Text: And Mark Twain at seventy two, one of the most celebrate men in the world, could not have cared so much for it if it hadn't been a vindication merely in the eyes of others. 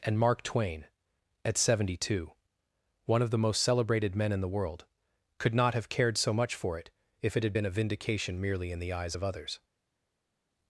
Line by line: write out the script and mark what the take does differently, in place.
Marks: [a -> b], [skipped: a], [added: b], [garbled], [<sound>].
And Mark Twain at seventy two, one of the most [celebrate -> celebrated] men in the world, could not have cared so much for it if it [hadn't -> had] been a vindication merely in the eyes of others.